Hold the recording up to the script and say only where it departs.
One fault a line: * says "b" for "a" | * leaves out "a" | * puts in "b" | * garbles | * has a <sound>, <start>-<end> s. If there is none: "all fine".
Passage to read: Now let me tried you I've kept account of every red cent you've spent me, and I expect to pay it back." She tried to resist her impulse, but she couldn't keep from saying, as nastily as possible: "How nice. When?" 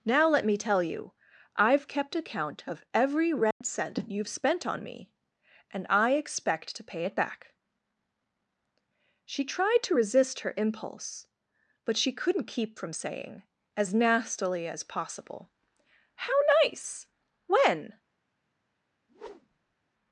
* says "tell" for "tried"
* has a dropout, 3.5-3.6 s
* puts in "on"
* has a whoosh, 19.1-19.8 s